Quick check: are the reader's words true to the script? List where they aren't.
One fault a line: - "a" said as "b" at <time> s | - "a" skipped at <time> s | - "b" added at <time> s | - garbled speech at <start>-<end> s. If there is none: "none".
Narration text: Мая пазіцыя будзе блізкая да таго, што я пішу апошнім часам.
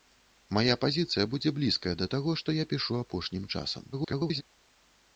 - garbled speech at 3.9-4.4 s